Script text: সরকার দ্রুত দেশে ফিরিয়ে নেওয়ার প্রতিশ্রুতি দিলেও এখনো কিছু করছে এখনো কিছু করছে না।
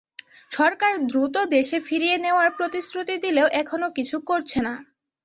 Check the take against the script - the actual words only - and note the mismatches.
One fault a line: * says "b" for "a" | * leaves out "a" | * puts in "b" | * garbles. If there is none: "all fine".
* leaves out "এখনো কিছু করছে"